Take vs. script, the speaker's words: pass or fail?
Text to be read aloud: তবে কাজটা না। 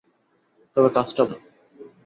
pass